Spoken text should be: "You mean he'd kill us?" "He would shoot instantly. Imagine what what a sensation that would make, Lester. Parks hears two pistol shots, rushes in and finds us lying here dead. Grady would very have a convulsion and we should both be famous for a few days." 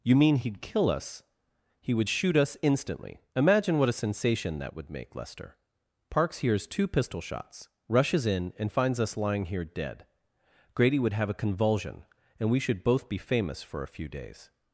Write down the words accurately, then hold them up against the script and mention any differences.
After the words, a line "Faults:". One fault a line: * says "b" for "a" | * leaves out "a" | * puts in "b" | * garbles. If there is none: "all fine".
"You mean he'd kill us?" "He would shoot us instantly. Imagine what a sensation that would make, Lester. Parks hears two pistol shots, rushes in and finds us lying here dead. Grady would have a convulsion and we should both be famous for a few days."
Faults:
* puts in "us"
* leaves out "what"
* leaves out "very"